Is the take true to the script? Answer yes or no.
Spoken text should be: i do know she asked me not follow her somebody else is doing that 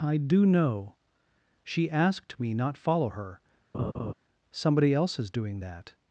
yes